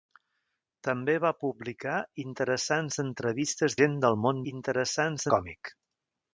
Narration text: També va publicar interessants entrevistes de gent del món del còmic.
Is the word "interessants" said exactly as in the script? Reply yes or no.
yes